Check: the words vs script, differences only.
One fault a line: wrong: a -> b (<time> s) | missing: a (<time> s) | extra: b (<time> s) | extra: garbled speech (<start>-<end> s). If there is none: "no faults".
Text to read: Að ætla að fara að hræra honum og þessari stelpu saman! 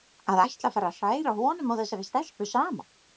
no faults